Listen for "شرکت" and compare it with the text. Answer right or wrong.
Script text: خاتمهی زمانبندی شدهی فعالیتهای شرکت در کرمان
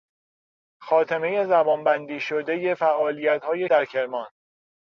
wrong